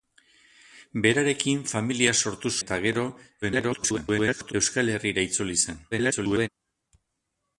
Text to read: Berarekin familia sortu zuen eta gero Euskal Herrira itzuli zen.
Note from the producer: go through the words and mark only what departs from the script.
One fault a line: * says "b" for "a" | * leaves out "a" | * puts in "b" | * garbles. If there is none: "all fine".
* leaves out "zuen"
* garbles
* garbles